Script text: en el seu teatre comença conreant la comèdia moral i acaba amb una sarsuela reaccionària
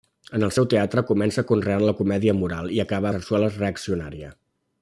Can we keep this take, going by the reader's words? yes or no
no